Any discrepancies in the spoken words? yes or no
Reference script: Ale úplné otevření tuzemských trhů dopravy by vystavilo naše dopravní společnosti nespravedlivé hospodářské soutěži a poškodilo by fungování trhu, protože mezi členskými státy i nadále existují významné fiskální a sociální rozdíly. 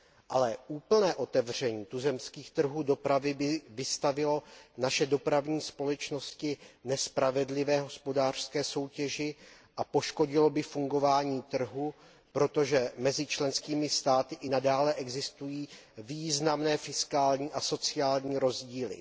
no